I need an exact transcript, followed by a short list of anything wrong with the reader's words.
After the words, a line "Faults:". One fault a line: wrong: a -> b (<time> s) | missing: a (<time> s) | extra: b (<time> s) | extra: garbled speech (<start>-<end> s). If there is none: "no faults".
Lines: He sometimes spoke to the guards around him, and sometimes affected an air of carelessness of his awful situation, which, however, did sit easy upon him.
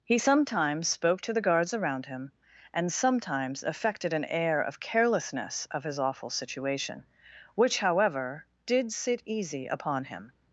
He sometimes spoke to the guards around him, and sometimes affected an air of carelessness of his awful situation, which, however, did sit easy upon him.
Faults:
no faults